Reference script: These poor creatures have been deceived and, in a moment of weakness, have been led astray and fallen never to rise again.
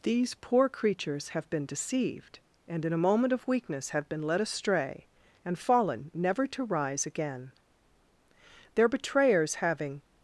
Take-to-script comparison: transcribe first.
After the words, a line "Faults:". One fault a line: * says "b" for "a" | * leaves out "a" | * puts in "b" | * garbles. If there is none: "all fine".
These poor creatures have been deceived and, in a moment of weakness, have been led astray and fallen never to rise again. Their betrayers, having
Faults:
* puts in "Their betrayers having"